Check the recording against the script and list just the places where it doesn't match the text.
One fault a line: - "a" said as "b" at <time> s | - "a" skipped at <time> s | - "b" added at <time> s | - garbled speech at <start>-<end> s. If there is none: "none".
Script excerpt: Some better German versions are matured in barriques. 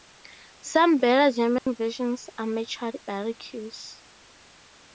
- "in" skipped at 3.0 s